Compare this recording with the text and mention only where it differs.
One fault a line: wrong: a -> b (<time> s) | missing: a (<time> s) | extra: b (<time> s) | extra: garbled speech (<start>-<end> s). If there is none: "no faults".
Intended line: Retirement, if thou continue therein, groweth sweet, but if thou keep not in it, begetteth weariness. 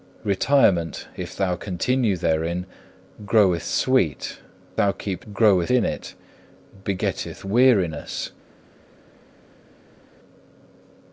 missing: but if (4.4 s)
wrong: not -> groweth (5.3 s)